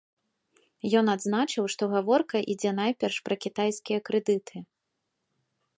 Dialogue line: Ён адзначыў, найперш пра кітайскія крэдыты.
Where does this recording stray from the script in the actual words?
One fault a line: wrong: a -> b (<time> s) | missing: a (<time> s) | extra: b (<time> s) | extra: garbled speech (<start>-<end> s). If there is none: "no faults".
extra: што гаворка ідзе (1.7 s)